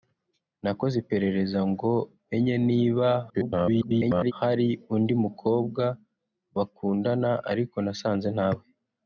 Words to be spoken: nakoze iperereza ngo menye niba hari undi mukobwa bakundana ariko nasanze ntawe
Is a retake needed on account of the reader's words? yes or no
yes